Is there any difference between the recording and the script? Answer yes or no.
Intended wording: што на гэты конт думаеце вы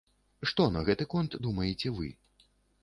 no